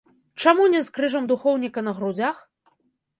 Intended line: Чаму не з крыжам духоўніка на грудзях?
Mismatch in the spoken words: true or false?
false